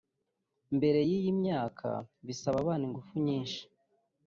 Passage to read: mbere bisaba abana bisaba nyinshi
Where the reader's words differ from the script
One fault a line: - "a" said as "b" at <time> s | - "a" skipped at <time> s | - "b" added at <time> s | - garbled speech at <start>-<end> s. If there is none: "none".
- "y'iyi myaka" added at 1.1 s
- "bisaba" said as "ingufu" at 2.9 s